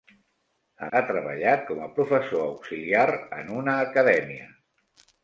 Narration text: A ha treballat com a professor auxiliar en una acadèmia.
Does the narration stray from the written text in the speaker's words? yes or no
no